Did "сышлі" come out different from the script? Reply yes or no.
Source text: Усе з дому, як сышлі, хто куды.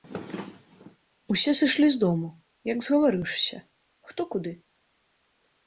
yes